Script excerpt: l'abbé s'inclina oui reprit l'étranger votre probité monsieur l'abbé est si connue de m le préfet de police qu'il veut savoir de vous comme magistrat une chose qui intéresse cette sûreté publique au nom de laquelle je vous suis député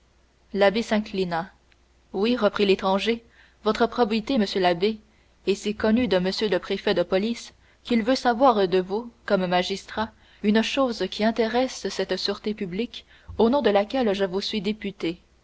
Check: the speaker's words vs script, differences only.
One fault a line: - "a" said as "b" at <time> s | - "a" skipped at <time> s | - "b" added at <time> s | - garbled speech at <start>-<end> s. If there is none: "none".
none